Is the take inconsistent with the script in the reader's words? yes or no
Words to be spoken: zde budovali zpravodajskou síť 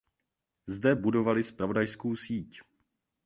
no